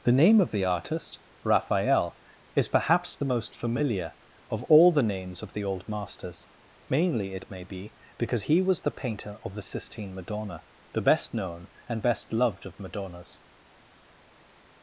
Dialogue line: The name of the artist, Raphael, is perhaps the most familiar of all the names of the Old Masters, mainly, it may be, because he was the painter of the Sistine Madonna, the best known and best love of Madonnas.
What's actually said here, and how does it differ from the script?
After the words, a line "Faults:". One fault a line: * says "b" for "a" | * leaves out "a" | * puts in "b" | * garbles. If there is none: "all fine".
The name of the artist, Raphael, is perhaps the most familiar of all the names of the Old Masters, mainly, it may be, because he was the painter of the Sistine Madonna, the best known and best loved of Madonnas.
Faults:
* says "loved" for "love"